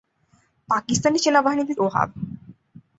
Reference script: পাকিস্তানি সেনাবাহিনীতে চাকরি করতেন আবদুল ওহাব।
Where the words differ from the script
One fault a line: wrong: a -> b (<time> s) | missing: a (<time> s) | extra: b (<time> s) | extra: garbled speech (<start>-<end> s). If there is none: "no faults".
missing: চাকরি করতেন আবদুল (1.7 s)